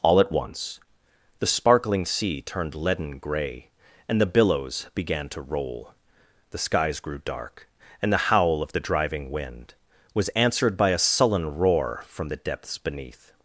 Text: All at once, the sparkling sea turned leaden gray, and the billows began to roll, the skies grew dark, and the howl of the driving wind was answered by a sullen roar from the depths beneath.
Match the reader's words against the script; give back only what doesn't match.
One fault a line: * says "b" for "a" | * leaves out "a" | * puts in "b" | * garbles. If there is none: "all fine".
all fine